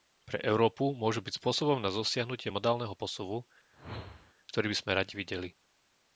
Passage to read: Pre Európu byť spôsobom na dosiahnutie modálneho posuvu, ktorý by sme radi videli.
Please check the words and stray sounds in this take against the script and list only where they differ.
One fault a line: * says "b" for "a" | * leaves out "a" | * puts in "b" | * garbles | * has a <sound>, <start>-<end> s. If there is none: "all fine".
* puts in "môžu"
* has a whoosh, 3.7-4.3 s